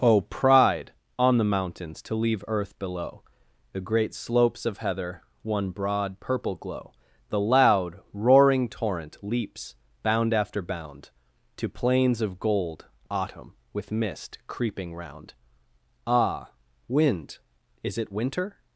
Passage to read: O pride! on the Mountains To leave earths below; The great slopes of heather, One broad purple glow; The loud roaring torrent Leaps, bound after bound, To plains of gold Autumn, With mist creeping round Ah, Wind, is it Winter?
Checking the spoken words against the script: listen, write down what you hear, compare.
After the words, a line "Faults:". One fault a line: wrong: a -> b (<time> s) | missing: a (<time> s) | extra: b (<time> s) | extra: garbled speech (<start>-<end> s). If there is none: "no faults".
O pride! on the Mountains To leave earth below; The great slopes of heather, One broad purple glow; The loud roaring torrent Leaps, bound after bound, To plains of gold Autumn, With mist creeping round Ah, Wind, is it Winter?
Faults:
wrong: earths -> earth (2.5 s)